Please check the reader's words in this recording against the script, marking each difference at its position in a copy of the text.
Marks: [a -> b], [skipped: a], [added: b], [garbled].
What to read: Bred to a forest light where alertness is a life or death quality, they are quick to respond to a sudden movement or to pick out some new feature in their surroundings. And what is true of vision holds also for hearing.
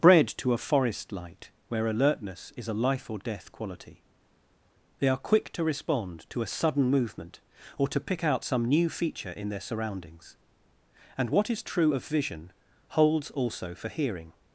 Bred to a forest light where alertness is a life or death quality, they are quick to respond to a sudden movement or to pick out some new feature in their surroundings. And what is true of vision holds also for hearing.